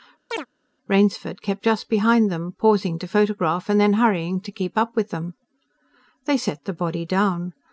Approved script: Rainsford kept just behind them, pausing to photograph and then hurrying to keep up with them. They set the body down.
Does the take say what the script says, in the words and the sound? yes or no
no